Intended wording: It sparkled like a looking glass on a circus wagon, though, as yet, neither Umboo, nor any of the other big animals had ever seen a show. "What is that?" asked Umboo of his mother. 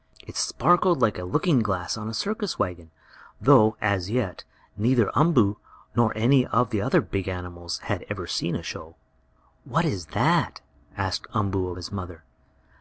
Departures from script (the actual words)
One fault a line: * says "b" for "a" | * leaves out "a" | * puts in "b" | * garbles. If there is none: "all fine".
all fine